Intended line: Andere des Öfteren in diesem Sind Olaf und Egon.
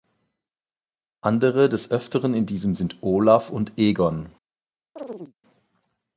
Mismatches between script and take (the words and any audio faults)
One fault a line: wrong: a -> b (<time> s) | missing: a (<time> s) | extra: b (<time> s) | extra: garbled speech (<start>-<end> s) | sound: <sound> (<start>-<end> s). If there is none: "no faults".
sound: chirp (5.0-5.3 s)